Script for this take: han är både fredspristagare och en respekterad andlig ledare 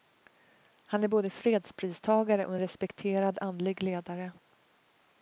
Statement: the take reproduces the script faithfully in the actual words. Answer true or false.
true